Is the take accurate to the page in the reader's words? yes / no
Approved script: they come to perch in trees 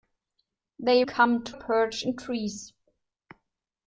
yes